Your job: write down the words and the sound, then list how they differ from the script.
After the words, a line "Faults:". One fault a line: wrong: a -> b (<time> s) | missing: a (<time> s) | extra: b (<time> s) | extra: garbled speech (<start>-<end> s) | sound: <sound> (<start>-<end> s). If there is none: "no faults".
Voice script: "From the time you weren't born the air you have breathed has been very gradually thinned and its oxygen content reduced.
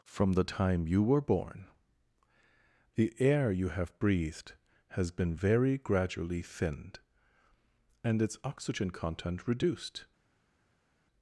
"From the time you were born the air you have breathed has been very gradually thinned and its oxygen content reduced.
Faults:
wrong: weren't -> were (1.0 s)